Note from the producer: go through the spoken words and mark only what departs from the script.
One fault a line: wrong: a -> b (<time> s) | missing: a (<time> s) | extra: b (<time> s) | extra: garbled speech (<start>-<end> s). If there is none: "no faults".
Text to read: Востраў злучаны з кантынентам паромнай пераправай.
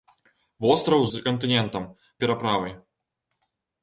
missing: злучаны (1.0 s)
missing: паромнай (1.9 s)